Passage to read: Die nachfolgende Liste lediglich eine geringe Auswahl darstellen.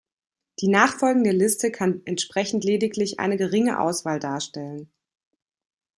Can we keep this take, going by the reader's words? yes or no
no